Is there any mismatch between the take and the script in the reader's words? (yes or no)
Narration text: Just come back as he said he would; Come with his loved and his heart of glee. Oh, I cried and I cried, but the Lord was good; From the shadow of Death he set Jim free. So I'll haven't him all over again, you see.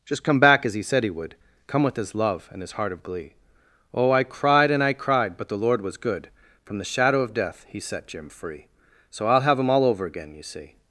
yes